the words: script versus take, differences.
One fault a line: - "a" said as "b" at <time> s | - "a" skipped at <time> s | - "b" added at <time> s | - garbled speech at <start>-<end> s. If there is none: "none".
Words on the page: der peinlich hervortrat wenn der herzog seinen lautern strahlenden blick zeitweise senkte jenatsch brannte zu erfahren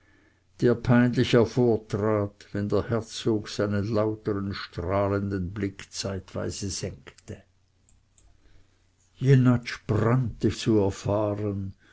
none